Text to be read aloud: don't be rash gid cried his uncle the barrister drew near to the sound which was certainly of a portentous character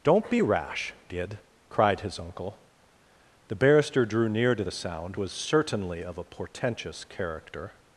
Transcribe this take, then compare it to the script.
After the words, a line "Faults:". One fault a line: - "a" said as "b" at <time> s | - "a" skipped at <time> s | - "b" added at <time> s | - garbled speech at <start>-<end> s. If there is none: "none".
don't be rash gid cried his uncle the barrister drew near to the sound was certainly of a portentous character
Faults:
- "which" skipped at 5.2 s